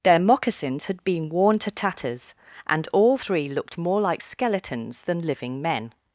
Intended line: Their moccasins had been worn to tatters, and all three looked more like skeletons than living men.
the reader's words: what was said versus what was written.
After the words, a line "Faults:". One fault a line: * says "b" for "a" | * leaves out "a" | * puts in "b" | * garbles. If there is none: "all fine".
Their moccasins had been worn to tatters, and all three looked more like skeletons than living men.
Faults:
all fine